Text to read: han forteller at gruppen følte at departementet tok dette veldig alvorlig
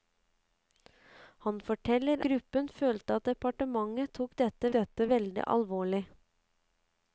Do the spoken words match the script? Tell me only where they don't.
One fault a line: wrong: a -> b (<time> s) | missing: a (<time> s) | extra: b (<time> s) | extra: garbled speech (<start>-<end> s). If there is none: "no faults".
missing: at (2.2 s)
extra: dette (4.8 s)